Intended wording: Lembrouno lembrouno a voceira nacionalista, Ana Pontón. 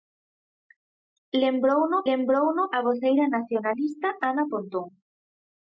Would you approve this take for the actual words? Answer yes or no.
yes